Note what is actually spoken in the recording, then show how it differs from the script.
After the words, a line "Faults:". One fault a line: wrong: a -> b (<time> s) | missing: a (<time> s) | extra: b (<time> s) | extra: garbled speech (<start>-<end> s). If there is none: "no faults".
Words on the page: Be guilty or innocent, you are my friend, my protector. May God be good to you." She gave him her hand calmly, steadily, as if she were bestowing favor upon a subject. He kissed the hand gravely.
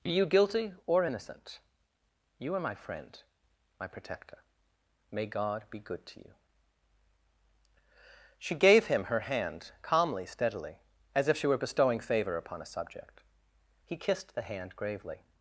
Be you guilty or innocent, you are my friend, my protector. May God be good to you." She gave him her hand calmly, steadily, as if she were bestowing favor upon a subject. He kissed the hand gravely.
Faults:
extra: you (0.1 s)